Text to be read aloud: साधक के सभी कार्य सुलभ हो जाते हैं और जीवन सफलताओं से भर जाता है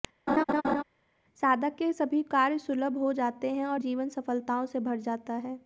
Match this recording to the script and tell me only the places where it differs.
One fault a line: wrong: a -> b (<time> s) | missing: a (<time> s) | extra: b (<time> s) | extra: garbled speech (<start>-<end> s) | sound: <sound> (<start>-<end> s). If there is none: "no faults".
sound: laugh (0.3-0.8 s)